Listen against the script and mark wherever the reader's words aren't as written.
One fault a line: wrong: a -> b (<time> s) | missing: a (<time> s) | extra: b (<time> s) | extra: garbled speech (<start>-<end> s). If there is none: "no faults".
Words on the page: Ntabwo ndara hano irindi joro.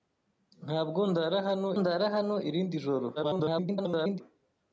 extra: ndara hano (1.8 s)
extra: garbled speech (3.2-4.2 s)